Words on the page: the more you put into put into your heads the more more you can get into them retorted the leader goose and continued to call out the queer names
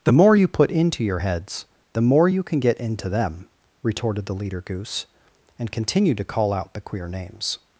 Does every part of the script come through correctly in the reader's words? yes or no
no